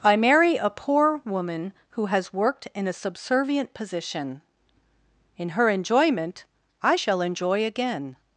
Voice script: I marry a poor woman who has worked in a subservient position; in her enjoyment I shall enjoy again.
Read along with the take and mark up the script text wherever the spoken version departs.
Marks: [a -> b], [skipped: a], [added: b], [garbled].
I marry a poor woman who has worked in a subservient position; in her enjoyment I shall enjoy again.